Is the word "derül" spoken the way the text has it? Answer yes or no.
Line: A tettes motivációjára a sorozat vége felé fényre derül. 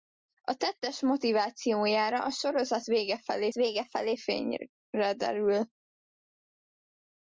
yes